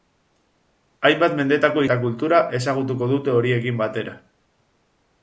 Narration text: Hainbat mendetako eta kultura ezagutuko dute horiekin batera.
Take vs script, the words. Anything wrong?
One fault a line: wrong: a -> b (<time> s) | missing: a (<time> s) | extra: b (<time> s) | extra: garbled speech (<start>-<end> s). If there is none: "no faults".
no faults